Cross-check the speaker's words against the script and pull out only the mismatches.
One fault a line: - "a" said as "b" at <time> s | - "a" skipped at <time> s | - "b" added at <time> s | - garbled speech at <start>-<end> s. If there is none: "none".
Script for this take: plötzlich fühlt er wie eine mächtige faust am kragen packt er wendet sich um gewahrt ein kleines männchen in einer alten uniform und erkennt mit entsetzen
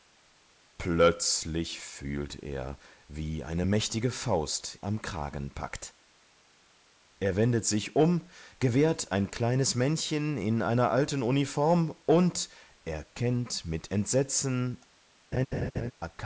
none